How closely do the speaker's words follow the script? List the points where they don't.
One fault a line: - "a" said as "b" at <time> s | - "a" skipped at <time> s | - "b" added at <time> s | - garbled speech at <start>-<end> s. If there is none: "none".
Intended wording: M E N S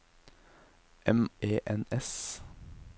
none